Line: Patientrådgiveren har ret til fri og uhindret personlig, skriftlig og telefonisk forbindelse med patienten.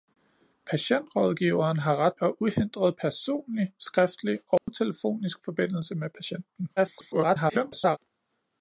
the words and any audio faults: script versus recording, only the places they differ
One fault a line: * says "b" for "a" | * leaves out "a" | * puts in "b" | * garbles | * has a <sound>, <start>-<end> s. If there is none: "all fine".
* leaves out "til fri"
* has a dropout, 4.6-4.7 s
* garbles